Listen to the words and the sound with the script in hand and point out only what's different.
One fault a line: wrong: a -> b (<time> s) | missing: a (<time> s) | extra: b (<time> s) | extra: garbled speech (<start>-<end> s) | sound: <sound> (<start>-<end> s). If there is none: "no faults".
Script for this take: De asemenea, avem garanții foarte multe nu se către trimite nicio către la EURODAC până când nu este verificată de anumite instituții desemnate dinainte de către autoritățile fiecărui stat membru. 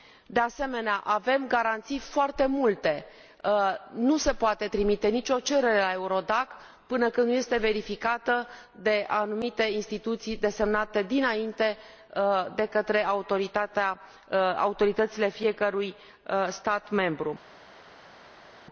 wrong: către -> poate (4.3 s)
wrong: către -> cerere (5.4 s)